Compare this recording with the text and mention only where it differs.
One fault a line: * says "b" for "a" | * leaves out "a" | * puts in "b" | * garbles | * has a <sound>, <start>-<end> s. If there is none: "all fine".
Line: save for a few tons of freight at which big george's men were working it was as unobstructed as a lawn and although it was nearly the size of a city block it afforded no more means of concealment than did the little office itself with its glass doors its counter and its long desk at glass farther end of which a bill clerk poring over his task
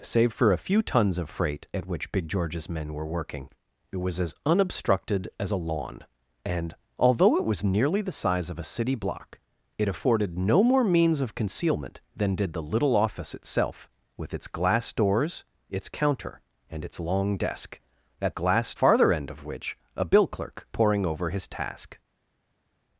all fine